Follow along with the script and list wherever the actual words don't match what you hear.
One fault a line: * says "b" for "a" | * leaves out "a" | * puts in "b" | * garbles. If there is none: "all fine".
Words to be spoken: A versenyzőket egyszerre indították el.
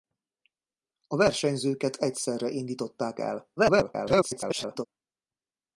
* garbles